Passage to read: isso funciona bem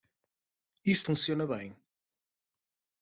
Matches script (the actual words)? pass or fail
pass